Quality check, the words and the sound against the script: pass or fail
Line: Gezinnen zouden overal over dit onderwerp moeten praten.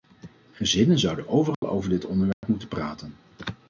fail